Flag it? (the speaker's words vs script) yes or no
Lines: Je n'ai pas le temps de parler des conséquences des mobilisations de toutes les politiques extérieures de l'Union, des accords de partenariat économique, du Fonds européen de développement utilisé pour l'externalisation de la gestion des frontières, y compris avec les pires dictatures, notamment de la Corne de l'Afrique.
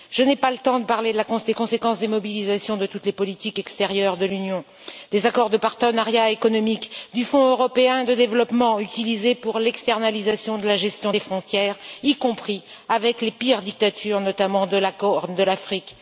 no